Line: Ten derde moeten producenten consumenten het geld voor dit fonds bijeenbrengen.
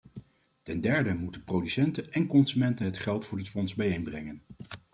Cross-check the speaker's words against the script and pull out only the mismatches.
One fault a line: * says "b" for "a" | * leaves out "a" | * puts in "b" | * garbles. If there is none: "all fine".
* puts in "en"